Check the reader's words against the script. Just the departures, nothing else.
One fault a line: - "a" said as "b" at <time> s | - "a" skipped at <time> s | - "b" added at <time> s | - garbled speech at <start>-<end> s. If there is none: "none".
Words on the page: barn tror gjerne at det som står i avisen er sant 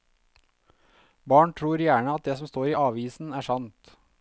none